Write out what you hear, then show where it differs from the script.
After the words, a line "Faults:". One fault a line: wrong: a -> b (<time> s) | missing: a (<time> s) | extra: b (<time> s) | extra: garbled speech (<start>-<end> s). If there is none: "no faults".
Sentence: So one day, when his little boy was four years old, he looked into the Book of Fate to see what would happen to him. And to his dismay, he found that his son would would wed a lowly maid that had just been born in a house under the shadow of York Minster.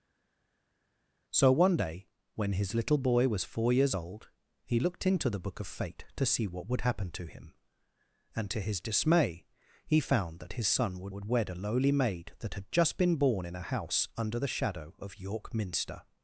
So one day, when his little boy was four years old, he looked into the Book of Fate to see what would happen to him. And to his dismay, he found that his son would would wed a lowly maid that had just been born in a house under the shadow of York Minster.
Faults:
no faults